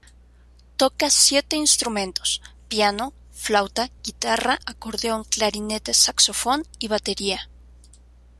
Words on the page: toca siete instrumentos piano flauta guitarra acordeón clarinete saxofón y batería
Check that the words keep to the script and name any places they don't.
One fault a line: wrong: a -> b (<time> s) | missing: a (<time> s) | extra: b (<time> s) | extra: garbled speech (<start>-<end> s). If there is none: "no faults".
no faults